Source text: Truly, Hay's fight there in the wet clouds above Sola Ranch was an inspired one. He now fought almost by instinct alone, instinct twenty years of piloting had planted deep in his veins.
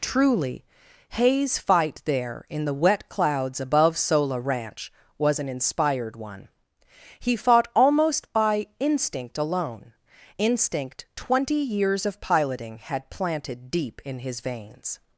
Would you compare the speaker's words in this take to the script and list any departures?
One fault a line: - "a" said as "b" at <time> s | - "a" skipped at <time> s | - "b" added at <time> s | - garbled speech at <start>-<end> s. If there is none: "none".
- "now" skipped at 7.3 s